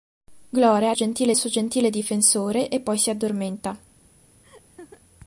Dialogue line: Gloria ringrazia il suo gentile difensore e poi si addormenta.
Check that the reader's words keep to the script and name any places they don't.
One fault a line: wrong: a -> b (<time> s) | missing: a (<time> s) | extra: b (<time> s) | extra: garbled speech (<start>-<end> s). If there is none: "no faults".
wrong: ringrazia -> gentile (0.9 s)